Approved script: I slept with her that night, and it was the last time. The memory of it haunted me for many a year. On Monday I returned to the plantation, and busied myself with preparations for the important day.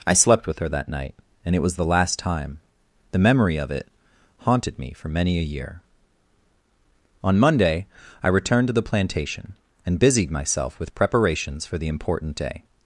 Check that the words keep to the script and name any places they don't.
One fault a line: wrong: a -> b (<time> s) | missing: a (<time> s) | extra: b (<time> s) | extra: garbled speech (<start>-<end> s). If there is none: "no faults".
no faults